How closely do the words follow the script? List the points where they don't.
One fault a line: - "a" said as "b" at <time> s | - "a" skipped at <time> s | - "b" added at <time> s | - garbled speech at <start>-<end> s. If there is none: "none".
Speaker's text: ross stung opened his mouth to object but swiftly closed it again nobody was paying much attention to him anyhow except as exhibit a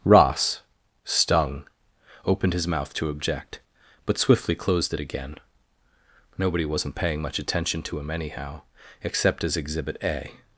- "was" said as "wasn't" at 6.6 s